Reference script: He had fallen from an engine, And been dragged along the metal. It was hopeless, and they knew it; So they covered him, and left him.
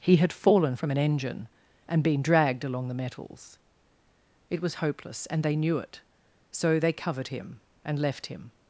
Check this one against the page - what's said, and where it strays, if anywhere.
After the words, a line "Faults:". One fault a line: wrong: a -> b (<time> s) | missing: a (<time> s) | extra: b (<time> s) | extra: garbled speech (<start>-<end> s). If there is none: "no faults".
He had fallen from an engine, And been dragged along the metals. It was hopeless, and they knew it; So they covered him, and left him.
Faults:
wrong: metal -> metals (2.9 s)